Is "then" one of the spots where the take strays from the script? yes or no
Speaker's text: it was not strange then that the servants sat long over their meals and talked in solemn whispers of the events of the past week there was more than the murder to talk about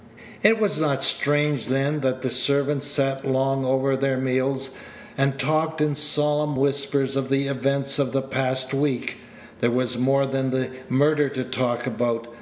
no